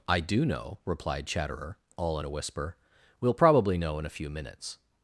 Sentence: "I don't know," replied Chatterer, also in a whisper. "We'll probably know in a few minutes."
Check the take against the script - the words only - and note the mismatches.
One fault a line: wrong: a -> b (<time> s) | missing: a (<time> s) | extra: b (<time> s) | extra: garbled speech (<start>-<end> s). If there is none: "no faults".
wrong: don't -> do (0.2 s)
wrong: also -> all (2.0 s)